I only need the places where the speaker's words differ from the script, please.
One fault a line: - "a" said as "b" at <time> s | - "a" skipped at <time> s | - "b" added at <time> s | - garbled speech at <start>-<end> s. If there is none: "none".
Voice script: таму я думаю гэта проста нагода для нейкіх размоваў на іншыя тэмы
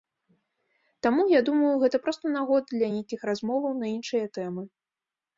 none